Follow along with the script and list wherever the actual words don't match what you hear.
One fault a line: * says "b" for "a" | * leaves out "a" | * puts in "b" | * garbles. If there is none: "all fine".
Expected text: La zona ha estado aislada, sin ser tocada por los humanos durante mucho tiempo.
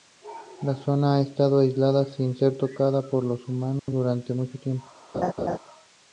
all fine